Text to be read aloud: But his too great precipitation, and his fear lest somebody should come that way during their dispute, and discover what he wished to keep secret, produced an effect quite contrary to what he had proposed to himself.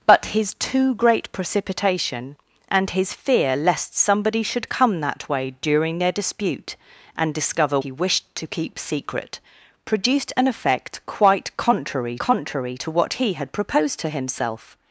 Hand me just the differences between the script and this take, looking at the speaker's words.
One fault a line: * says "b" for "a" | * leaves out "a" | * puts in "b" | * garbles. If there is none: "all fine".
* leaves out "what"
* puts in "contrary"